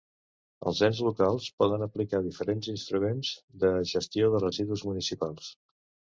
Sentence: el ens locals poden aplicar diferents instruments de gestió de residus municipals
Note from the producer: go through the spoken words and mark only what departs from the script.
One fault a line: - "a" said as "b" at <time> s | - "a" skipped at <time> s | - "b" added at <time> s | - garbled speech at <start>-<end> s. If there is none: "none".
- "el" said as "els" at 0.7 s